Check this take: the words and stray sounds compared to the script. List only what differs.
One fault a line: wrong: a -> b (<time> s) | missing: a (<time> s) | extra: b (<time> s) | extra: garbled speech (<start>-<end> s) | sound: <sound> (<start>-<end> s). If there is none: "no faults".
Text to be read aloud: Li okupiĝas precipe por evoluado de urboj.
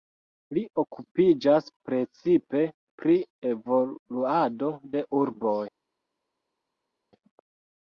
wrong: por -> pri (3.0 s)